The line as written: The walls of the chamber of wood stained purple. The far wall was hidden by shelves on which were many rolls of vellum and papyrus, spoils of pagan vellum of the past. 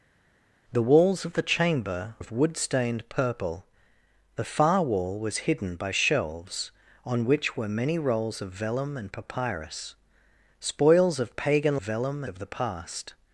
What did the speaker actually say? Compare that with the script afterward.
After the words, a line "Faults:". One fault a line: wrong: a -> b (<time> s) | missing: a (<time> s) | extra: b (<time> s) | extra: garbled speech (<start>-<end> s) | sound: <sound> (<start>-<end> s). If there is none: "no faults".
The walls of the chamber of wood stained purple. The far wall was hidden by shelves on which were many rolls of vellum and papyrus, spoils of pagan vellum of the past.
Faults:
no faults